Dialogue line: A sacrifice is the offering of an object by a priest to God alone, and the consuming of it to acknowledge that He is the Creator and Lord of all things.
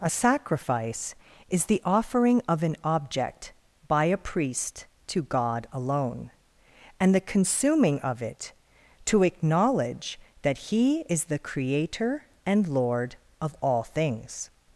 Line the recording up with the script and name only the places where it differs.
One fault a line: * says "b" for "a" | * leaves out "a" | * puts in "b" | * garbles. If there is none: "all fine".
all fine